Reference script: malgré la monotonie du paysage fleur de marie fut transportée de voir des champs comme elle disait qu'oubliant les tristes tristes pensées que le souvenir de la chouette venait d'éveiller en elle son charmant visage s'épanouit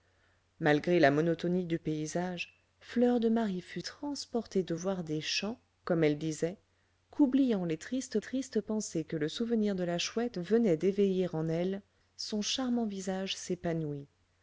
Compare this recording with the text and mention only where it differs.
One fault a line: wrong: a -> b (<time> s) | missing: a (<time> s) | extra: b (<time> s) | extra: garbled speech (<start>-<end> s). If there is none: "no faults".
no faults